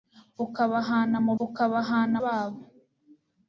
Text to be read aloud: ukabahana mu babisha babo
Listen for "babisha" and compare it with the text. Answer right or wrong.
wrong